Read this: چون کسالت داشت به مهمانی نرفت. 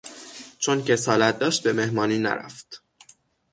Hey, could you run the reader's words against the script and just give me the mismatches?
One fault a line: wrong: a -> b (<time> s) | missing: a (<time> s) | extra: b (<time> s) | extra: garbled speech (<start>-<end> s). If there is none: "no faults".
no faults